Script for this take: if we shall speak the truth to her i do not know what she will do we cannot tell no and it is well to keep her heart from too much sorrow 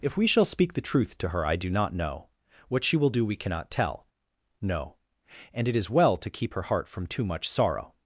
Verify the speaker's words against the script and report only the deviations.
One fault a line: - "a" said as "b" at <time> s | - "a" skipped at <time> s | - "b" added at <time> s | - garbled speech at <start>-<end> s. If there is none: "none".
none